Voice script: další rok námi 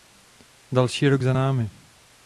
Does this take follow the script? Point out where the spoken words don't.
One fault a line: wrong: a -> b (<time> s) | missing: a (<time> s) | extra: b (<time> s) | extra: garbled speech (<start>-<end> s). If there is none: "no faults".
extra: za (1.2 s)